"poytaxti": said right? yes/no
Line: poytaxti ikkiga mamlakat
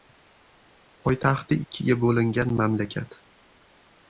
yes